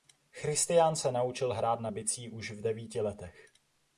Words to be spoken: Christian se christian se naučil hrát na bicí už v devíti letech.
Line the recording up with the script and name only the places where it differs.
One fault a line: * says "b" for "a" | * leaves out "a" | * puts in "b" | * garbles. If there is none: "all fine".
* leaves out "christian se"